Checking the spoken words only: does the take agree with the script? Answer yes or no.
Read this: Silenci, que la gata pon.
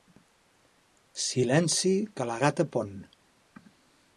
yes